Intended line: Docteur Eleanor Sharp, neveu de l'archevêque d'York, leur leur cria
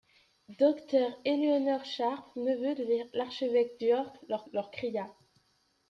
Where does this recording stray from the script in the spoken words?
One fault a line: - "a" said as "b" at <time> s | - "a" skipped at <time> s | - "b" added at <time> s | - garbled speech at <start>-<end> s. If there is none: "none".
none